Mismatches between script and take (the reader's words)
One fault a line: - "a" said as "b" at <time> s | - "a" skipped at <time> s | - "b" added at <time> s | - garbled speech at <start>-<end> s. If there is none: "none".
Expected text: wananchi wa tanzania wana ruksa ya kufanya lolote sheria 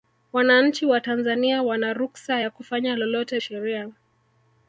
none